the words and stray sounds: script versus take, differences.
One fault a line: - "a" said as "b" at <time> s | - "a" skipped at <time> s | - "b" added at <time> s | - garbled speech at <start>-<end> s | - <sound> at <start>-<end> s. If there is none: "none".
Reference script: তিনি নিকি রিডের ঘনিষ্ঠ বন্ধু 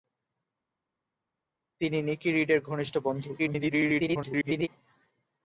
- garbled speech at 3.4-4.7 s